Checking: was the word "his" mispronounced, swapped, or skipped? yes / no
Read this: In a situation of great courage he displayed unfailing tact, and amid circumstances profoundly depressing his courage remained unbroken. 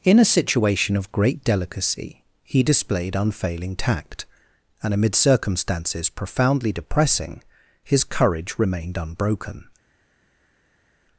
no